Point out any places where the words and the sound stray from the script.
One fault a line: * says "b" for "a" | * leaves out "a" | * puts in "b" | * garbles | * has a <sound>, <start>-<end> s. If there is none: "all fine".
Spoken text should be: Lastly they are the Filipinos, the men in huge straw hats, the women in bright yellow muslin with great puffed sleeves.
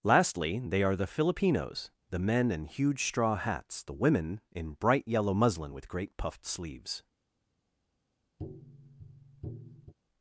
* has a tap, 8.4-9.9 s